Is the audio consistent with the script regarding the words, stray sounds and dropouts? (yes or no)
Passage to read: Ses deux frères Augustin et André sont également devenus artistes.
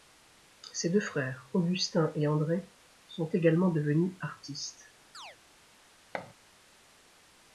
no